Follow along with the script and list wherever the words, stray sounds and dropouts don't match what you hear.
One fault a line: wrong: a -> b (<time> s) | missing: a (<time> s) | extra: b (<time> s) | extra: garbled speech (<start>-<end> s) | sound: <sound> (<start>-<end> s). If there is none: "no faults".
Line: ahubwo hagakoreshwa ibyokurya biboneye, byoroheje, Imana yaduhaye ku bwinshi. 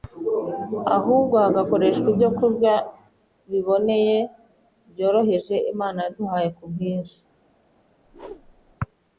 sound: whoosh (8.0-8.8 s)